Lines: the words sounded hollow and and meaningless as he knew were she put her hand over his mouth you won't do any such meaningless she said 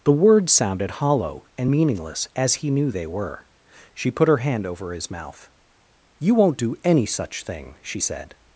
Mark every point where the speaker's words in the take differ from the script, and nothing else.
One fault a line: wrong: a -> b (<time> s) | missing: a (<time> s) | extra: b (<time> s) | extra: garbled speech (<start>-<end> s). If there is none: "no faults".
missing: and (1.7 s)
extra: they (2.9 s)
wrong: meaningless -> thing (7.4 s)